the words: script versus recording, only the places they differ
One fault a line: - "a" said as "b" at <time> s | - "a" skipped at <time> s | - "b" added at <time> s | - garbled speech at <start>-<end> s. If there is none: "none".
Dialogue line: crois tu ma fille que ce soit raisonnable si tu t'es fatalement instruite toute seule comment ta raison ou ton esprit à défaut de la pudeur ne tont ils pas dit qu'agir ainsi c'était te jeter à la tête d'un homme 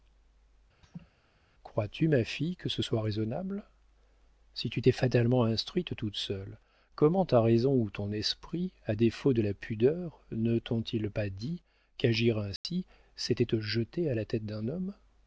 none